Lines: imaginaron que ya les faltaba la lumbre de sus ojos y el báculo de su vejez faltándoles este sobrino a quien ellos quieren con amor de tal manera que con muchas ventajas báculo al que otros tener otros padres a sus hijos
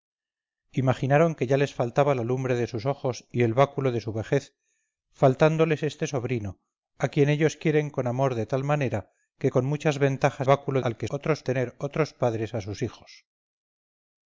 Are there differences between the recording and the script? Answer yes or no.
no